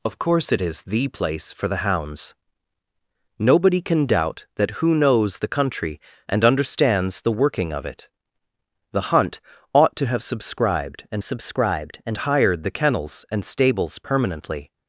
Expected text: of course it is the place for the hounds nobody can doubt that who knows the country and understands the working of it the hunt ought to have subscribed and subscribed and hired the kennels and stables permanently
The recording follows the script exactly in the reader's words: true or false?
true